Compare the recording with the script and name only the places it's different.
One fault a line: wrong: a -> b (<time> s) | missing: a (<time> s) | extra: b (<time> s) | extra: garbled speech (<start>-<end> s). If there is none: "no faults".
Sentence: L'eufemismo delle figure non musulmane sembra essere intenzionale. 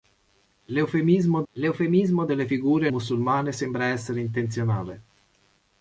extra: l'eufemismo (1.5 s)
missing: non (2.9 s)